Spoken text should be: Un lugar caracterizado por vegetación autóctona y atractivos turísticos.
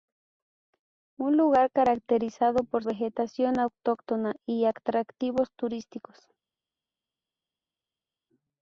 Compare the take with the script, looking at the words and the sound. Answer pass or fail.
pass